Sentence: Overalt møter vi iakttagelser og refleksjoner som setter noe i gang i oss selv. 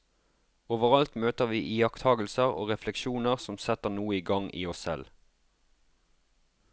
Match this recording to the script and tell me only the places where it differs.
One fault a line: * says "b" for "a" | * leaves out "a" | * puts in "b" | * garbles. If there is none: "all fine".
all fine